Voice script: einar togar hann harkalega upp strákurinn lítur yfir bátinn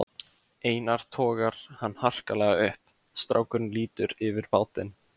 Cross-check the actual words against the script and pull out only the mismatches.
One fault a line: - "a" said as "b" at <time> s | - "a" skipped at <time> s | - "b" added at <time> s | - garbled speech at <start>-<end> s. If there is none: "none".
none